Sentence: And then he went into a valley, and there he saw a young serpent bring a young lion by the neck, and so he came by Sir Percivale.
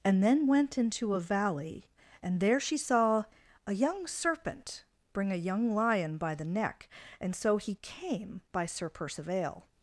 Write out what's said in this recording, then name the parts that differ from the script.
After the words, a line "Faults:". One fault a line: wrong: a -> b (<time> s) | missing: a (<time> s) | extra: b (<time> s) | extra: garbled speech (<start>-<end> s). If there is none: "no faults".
And then went into a valley, and there she saw a young serpent bring a young lion by the neck, and so he came by Sir Percivale.
Faults:
missing: he (0.5 s)
wrong: he -> she (2.6 s)